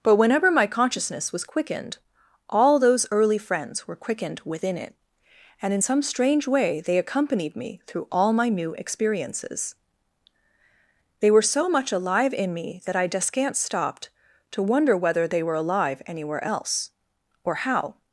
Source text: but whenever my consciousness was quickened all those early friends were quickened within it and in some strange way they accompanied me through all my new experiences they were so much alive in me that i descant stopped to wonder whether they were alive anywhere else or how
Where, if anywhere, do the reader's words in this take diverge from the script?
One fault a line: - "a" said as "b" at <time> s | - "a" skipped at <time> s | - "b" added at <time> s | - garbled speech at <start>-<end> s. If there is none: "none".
none